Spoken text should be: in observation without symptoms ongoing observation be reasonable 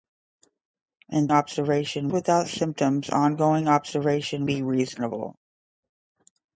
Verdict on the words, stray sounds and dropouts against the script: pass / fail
pass